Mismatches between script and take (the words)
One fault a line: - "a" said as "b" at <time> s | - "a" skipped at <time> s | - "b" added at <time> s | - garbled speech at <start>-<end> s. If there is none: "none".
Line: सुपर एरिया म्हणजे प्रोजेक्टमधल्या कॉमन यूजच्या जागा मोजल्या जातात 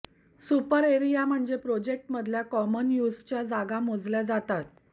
none